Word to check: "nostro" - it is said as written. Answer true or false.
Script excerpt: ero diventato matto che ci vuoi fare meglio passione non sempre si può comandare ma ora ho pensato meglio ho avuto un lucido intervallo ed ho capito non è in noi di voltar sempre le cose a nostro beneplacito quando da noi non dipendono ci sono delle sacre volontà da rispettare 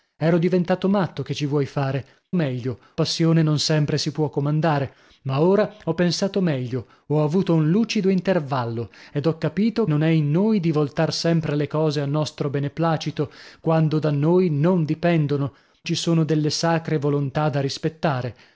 true